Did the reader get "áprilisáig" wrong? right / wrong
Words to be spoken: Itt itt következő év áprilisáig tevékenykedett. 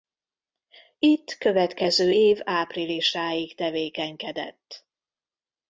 right